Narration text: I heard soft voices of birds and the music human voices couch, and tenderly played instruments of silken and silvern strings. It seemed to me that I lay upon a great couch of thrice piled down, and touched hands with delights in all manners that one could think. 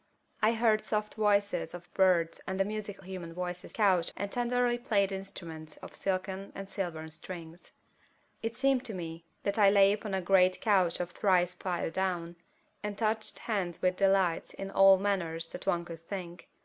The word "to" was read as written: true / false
true